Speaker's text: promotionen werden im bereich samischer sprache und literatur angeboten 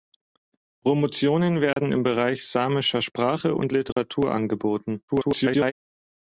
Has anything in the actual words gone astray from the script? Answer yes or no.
yes